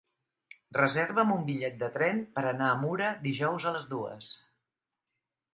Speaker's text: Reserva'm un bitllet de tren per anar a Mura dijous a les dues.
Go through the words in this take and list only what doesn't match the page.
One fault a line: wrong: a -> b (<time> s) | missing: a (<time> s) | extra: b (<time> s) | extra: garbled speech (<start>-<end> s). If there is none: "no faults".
no faults